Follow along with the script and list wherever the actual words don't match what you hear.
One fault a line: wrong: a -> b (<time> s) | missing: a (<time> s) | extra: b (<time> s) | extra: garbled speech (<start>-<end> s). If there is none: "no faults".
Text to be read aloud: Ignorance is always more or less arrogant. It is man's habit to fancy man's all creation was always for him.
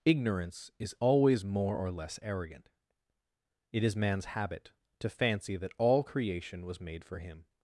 wrong: man's -> that (5.6 s)
wrong: always -> made (6.8 s)